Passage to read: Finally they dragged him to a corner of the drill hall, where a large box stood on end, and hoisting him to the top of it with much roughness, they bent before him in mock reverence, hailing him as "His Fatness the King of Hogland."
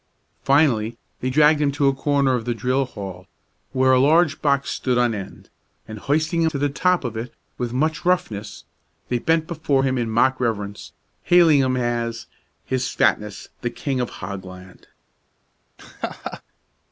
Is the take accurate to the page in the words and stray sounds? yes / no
no